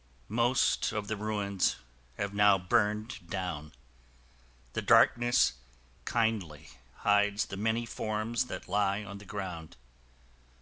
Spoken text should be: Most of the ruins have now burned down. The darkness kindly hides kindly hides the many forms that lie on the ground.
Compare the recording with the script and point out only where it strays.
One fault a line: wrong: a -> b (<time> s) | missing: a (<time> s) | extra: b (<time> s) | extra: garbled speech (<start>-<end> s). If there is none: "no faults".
missing: kindly hides (7.5 s)